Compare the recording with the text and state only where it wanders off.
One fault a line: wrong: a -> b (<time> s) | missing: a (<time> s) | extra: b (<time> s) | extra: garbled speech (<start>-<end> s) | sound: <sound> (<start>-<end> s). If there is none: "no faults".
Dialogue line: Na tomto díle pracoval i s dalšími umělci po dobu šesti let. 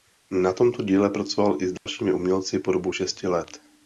sound: dropout (1.8-1.9 s)